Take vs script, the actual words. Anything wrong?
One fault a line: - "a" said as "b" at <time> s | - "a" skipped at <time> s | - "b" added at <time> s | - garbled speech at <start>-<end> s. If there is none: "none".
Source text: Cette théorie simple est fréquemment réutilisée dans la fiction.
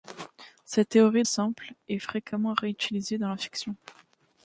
none